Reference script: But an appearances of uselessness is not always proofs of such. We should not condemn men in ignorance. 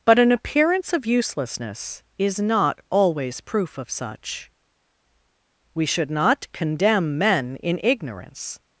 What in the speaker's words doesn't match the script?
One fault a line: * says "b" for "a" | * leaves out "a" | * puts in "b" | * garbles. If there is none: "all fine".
* says "appearance" for "appearances"
* says "proof" for "proofs"